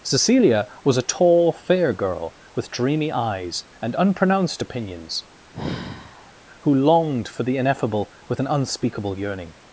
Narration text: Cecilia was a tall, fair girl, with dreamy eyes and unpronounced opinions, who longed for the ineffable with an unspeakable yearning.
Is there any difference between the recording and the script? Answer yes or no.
no